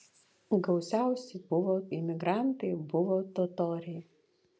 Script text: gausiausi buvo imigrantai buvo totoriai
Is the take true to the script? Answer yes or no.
yes